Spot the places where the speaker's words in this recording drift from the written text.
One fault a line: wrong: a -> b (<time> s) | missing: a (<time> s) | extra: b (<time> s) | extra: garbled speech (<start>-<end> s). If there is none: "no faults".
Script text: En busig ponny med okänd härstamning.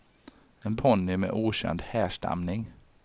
missing: busig (0.8 s)